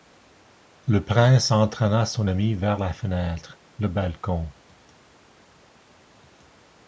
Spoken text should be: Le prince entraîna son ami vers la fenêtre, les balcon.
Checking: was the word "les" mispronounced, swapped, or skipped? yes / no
yes